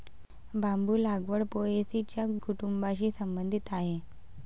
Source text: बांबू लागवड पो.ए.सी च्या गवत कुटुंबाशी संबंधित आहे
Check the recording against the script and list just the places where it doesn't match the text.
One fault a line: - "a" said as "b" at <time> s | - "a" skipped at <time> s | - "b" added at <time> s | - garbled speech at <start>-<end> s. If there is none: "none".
- "गवत" skipped at 2.3 s